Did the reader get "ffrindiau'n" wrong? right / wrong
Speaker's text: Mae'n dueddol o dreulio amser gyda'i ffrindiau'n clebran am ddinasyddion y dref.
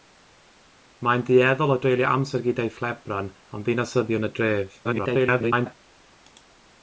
wrong